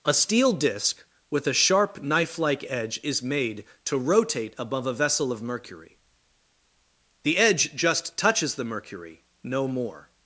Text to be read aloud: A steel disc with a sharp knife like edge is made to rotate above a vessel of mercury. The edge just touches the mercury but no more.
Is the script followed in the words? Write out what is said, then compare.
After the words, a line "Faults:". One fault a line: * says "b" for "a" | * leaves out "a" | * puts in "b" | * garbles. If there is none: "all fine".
A steel disc with a sharp knife like edge is made to rotate above a vessel of mercury. The edge just touches the mercury no more.
Faults:
* leaves out "but"